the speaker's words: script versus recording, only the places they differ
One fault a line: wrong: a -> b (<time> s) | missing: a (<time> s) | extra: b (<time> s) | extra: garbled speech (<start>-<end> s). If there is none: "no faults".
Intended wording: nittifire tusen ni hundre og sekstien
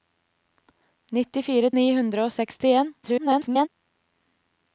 missing: tusen (1.7 s)
extra: garbled speech (3.0-3.7 s)